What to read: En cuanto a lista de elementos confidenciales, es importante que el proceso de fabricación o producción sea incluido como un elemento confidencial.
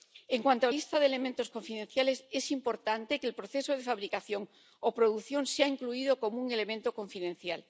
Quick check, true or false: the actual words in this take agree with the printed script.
true